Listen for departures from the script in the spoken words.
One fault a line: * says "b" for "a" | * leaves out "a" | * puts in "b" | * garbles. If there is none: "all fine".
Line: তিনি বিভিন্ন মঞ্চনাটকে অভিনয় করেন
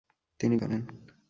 * leaves out "বিভিন্ন মঞ্চনাটকে অভিনয়"